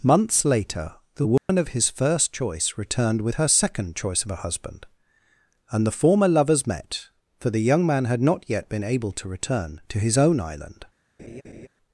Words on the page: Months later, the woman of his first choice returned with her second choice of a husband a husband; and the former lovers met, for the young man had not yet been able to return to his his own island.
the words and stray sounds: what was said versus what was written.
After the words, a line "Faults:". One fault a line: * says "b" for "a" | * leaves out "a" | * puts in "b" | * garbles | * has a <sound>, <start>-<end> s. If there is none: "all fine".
Months later, the woman of his first choice returned with her second choice of a husband; and the former lovers met, for the young man had not yet been able to return to his own island.
Faults:
* has a dropout, 1.4-1.5 s
* leaves out "a husband"
* leaves out "his"
* has a laugh, 11.2-11.7 s